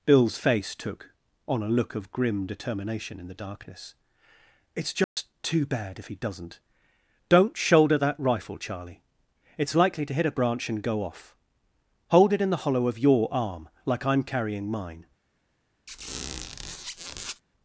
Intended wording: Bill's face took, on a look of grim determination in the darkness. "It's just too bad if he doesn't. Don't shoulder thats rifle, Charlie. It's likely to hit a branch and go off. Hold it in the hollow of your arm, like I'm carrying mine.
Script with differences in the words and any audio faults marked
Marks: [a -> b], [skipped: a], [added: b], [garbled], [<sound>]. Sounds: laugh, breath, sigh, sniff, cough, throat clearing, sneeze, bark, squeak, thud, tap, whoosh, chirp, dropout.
Bill's face took, on a look of grim determination in the darkness. "It's just [dropout] too bad if he doesn't. Don't shoulder [thats -> that] rifle, Charlie. It's likely to hit a branch and go off. Hold it in the hollow of your arm, like I'm carrying mine. [squeak]